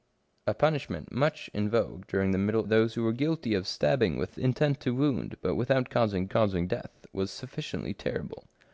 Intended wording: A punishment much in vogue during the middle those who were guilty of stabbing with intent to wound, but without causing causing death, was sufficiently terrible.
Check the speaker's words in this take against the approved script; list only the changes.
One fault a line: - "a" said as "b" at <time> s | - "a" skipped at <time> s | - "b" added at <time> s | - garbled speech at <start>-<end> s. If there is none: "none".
none